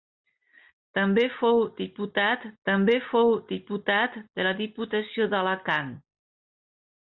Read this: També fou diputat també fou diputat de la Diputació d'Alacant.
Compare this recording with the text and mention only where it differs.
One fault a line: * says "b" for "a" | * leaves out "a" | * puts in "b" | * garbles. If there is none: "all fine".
all fine